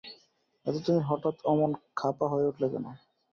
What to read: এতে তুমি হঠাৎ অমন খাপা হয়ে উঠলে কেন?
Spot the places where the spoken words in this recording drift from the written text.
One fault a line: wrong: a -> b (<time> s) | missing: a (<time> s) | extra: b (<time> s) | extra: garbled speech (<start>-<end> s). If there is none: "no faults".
no faults